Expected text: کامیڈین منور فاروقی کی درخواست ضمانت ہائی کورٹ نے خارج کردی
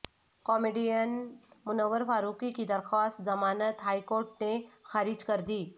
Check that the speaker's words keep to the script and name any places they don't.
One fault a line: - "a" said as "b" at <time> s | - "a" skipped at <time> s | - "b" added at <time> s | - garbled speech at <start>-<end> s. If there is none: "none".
none